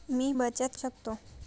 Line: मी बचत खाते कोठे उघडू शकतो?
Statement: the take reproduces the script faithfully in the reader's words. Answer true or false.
false